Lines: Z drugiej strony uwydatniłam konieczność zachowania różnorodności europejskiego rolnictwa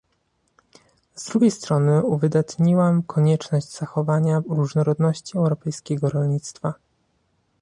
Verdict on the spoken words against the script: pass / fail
pass